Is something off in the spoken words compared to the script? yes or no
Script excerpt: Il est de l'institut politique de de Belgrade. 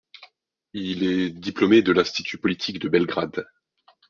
yes